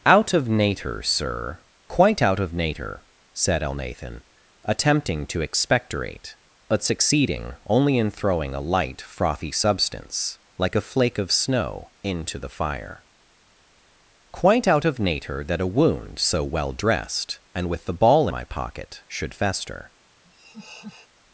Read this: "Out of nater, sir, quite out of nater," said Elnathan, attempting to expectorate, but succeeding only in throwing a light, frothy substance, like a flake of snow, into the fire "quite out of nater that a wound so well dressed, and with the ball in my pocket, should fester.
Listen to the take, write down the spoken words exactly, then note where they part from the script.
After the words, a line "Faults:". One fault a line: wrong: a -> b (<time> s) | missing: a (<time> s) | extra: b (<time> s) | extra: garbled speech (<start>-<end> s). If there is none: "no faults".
"Out of nater, sir, quite out of nater," said Elnathan, attempting to expectorate, but succeeding only in throwing a light, frothy substance, like a flake of snow, into the fire "quite out of nater that a wound so well dressed, and with the ball my pocket, should fester.
Faults:
missing: in (18.3 s)